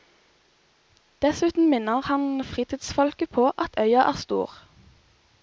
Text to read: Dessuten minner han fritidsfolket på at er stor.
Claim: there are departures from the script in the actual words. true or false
true